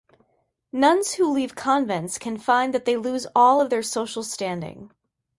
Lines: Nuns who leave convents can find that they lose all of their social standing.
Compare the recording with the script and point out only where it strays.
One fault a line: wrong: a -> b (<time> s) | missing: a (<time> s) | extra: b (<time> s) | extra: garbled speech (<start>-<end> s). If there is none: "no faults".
no faults